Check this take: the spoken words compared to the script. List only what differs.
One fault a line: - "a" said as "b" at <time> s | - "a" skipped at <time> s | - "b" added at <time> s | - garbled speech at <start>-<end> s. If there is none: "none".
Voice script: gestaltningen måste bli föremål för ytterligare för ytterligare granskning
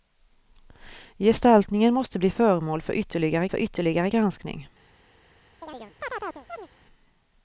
none